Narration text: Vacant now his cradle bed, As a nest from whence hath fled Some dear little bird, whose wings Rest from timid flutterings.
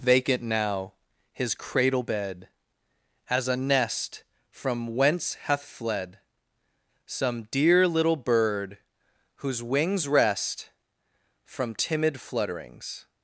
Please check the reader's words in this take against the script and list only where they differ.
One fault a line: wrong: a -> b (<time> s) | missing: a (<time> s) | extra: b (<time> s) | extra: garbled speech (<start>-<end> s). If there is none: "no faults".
no faults